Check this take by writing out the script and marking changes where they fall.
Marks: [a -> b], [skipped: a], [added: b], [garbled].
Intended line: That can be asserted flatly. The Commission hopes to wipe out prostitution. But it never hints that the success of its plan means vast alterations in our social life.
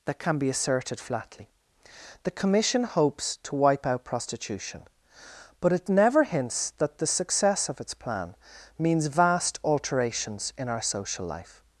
That can be asserted flatly. The Commission hopes to wipe out prostitution. But it never hints that the success of its plan means vast alterations in our social life.